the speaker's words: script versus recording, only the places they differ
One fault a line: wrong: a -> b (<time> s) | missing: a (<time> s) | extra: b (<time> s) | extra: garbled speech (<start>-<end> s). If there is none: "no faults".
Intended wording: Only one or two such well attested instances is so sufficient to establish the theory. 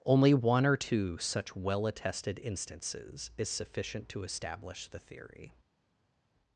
missing: so (3.5 s)